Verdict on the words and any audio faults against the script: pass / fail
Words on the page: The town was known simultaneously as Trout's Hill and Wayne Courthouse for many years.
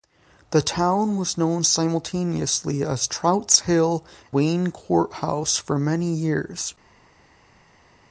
fail